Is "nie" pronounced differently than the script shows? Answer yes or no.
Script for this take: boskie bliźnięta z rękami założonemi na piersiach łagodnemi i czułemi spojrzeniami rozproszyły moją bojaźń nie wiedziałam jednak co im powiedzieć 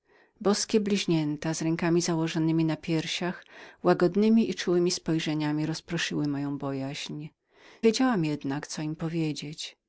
yes